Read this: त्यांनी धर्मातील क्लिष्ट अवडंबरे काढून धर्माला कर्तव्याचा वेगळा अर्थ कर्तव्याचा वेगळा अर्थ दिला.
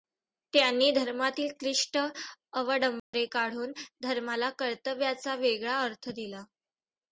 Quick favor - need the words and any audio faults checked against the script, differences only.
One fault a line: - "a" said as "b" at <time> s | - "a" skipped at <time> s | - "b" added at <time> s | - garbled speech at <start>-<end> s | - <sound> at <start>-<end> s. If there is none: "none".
- dropout at 3.0-3.1 s
- "कर्तव्याचा वेगळा अर्थ" skipped at 6.1 s